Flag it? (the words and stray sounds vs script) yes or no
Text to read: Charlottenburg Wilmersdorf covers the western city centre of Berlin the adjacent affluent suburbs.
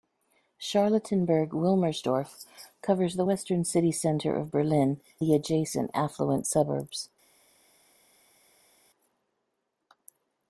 no